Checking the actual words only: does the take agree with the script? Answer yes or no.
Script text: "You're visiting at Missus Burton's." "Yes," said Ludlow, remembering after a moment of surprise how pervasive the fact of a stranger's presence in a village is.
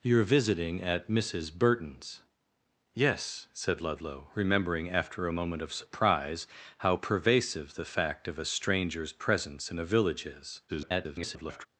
no